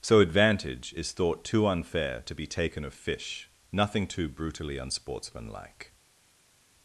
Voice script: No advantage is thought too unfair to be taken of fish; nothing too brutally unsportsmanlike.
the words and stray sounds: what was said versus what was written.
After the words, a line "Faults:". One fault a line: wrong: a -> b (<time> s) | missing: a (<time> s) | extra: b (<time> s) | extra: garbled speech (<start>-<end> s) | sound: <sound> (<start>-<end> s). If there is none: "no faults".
So advantage is thought too unfair to be taken of fish; nothing too brutally unsportsmanlike.
Faults:
wrong: No -> So (0.0 s)